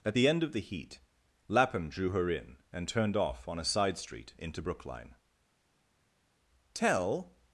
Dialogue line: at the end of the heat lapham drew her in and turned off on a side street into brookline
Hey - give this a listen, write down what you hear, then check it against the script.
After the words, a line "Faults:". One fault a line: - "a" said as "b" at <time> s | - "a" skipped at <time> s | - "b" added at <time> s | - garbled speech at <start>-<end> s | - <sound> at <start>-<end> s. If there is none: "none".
at the end of the heat lapham drew her in and turned off on a side street into brookline tell
Faults:
- "tell" added at 6.7 s